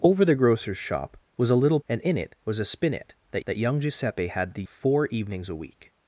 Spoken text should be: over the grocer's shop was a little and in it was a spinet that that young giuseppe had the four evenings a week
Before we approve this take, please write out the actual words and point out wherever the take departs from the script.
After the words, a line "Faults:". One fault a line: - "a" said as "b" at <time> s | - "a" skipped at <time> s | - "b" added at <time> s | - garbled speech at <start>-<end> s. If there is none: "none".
over the grocer's shop was a little and in it was a spinet that that young giuseppe had the four evenings a week
Faults:
none